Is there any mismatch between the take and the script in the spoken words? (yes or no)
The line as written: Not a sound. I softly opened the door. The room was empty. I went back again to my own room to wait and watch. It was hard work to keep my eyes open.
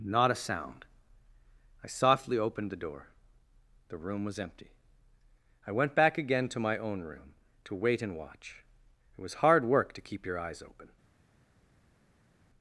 yes